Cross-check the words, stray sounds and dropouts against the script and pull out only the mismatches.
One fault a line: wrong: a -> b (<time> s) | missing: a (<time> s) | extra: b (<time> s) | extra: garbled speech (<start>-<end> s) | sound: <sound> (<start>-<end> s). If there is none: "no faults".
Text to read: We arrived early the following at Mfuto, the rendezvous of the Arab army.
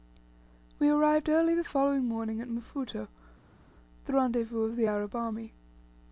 extra: morning (2.0 s)